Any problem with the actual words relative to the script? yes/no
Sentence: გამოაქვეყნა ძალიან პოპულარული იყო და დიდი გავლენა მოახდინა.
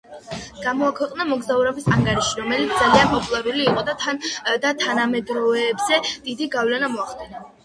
yes